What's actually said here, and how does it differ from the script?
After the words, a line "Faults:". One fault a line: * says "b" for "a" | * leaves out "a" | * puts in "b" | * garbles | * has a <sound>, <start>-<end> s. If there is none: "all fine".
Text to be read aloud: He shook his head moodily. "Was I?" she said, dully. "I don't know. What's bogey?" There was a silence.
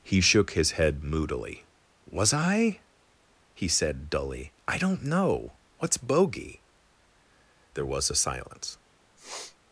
He shook his head moodily. "Was I?" he said, dully. "I don't know. What's bogey?" There was a silence.
Faults:
* says "he" for "she"
* has a sniff, 9.2-9.6 s